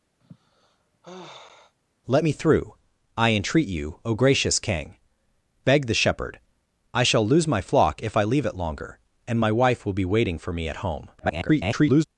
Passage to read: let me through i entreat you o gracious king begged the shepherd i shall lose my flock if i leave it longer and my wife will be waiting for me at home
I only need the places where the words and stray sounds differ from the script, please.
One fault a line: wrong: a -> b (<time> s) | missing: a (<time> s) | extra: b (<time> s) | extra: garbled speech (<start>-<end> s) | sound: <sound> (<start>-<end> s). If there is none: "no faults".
sound: sigh (0.2-1.7 s)
extra: garbled speech (11.2-12.0 s)